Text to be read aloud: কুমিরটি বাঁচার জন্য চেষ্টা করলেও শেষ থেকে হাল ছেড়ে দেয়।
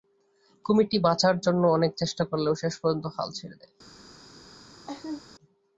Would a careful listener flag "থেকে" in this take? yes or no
yes